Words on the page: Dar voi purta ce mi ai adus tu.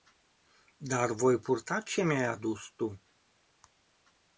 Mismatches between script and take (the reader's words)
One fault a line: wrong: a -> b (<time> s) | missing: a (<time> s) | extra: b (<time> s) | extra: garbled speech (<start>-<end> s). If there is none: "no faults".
no faults